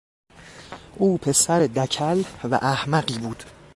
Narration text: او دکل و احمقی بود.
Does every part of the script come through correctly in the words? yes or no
no